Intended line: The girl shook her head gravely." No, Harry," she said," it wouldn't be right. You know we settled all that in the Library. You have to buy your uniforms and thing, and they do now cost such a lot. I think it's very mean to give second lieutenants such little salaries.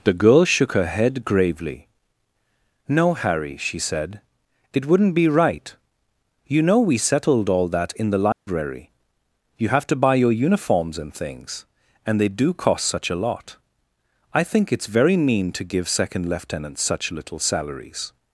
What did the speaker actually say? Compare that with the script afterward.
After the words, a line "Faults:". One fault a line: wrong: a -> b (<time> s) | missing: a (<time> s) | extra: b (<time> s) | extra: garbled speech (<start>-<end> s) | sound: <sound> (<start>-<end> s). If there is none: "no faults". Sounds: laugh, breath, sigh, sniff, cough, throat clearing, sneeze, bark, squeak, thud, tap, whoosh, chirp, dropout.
The girl shook her head gravely." No, Harry," she said," it wouldn't be right. You know we settled all that in the Library. You have to buy your uniforms and things, and they do cost such a lot. I think it's very mean to give second lieutenants such little salaries.
Faults:
sound: dropout (8.3-8.5 s)
wrong: thing -> things (11.1 s)
missing: now (12.5 s)